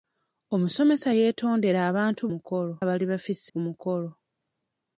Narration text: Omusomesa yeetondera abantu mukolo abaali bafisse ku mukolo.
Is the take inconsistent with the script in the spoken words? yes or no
no